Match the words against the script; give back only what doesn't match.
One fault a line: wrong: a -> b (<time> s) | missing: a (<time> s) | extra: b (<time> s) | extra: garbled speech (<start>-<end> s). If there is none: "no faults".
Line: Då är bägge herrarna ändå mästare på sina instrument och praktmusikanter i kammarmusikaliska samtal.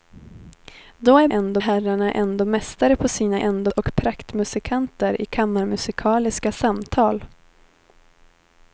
wrong: bägge -> ändå (1.3 s)
wrong: instrument -> ändå (3.4 s)